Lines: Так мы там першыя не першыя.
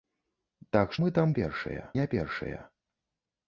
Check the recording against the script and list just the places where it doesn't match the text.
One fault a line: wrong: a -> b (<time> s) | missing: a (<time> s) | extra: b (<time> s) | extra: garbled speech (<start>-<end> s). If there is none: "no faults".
no faults